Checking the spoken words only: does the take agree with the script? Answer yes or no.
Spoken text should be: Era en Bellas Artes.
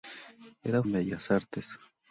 yes